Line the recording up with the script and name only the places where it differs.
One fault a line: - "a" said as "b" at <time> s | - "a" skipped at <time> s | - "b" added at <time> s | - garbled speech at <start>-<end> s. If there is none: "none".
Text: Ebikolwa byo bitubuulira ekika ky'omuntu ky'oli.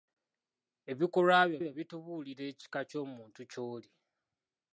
- "byo" added at 1.6 s